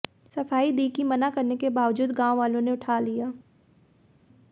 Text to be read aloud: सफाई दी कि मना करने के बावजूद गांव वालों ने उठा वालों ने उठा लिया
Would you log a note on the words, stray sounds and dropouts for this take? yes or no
yes